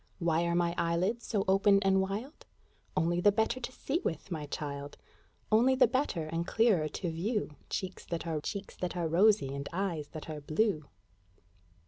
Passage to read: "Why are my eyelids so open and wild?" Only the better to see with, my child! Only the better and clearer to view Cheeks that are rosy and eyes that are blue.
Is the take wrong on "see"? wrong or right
right